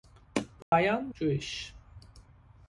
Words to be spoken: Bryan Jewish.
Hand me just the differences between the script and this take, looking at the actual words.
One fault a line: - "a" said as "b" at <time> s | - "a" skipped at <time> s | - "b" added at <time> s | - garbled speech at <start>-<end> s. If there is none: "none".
none